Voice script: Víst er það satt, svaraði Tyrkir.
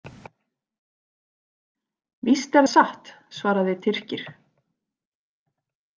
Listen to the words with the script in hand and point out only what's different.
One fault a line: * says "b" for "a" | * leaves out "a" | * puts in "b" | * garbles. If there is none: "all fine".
* leaves out "það"